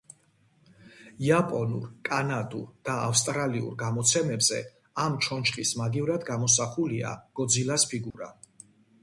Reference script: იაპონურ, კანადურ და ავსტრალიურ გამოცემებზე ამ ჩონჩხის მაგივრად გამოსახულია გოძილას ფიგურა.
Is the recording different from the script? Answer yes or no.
no